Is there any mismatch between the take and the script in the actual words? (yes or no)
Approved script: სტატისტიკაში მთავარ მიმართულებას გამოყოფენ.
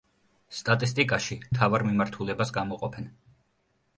no